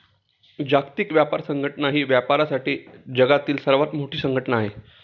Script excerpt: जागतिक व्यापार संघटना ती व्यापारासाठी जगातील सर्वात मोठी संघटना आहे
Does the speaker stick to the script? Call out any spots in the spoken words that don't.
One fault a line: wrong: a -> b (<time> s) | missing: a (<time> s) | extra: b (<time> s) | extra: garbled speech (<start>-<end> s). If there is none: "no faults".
wrong: ती -> ही (1.9 s)